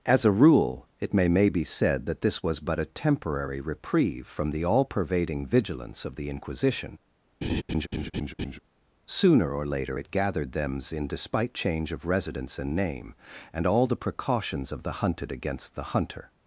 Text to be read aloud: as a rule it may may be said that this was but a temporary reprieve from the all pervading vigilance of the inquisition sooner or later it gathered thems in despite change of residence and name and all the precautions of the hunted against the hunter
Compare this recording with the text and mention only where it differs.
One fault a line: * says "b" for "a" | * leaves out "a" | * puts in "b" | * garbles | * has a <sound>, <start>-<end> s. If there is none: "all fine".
* has a laugh, 7.4-8.6 s